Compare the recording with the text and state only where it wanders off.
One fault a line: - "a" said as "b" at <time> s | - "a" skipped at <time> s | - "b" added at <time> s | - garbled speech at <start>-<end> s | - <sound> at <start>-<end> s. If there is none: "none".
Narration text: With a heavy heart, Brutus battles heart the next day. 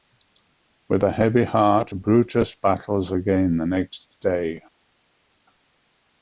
- "heart" said as "again" at 3.1 s